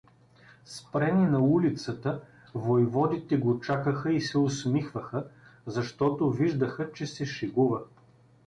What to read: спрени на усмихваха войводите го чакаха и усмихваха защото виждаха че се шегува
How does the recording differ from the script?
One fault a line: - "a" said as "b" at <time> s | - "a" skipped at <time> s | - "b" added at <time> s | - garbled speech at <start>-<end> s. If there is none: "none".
- "усмихваха" said as "улицата" at 1.4 s
- "се" added at 4.2 s